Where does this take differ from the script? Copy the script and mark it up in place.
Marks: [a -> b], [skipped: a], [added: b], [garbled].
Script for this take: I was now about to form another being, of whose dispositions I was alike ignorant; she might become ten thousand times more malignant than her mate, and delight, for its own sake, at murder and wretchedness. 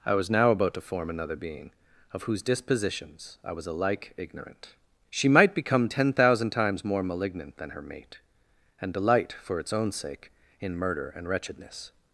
I was now about to form another being, of whose dispositions I was alike ignorant; she might become ten thousand times more malignant than her mate, and delight, for its own sake, [at -> in] murder and wretchedness.